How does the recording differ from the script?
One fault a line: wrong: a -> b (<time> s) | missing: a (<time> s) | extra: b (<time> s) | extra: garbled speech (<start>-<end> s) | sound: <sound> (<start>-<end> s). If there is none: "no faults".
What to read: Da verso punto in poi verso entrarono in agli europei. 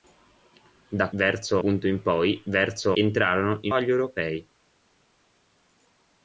no faults